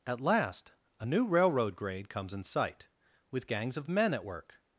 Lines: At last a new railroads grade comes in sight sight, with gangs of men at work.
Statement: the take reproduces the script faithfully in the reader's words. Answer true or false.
false